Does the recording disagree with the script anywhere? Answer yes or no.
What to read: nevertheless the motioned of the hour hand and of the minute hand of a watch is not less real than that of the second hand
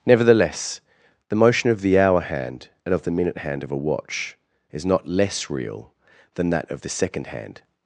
yes